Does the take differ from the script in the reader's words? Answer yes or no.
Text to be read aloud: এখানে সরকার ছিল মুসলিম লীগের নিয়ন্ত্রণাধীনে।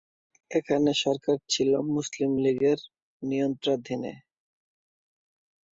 no